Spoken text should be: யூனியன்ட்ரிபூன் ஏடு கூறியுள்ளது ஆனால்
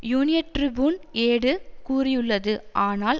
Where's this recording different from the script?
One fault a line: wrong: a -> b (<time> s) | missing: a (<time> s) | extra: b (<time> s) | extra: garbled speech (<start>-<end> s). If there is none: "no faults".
no faults